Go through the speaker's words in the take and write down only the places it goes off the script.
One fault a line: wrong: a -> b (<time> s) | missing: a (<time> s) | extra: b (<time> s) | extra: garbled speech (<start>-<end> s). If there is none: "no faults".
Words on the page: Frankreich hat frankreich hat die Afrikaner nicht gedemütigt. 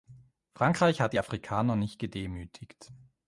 missing: frankreich hat (1.1 s)